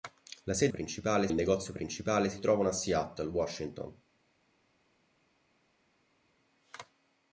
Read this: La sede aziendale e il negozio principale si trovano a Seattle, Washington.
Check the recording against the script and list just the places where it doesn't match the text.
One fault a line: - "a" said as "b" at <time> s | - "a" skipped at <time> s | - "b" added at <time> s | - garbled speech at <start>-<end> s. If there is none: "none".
- "aziendale" said as "principale" at 0.7 s